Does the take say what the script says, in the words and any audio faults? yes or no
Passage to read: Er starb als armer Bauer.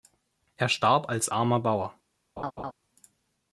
no